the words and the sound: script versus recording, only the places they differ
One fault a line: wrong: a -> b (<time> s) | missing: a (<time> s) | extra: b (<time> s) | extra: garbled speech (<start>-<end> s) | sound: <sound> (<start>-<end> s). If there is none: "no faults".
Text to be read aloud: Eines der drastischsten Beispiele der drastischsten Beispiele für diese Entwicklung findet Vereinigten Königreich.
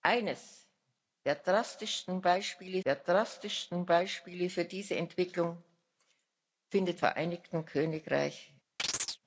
sound: chirp (8.8-9.2 s)